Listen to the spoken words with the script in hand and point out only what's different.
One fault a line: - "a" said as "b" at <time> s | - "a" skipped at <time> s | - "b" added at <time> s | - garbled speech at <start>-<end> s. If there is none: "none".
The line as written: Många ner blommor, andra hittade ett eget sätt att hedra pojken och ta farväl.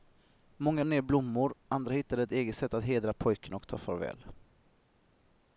none